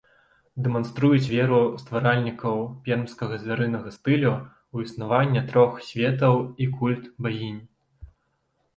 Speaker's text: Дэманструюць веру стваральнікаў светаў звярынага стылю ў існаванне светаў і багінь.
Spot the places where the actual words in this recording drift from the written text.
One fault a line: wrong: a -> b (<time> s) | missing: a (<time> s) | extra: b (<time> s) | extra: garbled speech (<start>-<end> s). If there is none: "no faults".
wrong: светаў -> пермскага (2.9 s)
extra: трох (5.5 s)
extra: культ (6.8 s)